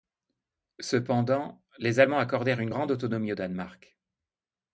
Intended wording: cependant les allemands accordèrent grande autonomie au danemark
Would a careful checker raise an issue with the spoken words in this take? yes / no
yes